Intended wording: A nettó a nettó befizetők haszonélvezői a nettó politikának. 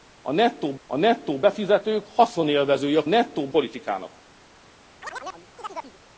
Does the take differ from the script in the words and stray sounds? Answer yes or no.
yes